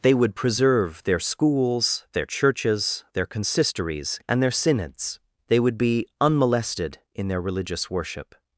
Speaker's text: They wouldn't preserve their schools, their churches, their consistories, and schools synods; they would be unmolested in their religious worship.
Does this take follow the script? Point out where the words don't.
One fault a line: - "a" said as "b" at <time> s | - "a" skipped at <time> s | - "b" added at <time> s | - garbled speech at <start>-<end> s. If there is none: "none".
- "wouldn't" said as "would" at 0.1 s
- "schools" said as "their" at 4.4 s